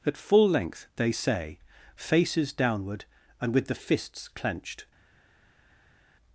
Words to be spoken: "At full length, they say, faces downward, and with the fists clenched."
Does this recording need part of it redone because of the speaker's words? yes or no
no